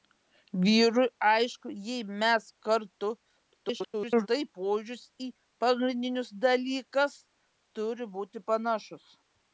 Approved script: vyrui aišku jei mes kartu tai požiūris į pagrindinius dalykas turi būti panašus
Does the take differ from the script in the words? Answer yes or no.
yes